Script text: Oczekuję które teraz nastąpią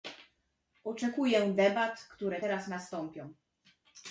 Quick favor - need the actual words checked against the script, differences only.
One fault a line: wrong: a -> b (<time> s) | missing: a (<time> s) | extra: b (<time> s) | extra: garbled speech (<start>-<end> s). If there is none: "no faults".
extra: debat (1.5 s)